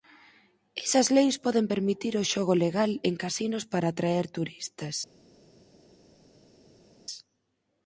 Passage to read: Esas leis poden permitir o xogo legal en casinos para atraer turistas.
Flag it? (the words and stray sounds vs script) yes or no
no